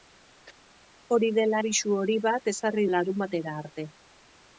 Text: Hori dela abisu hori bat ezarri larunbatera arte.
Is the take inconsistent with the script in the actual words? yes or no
no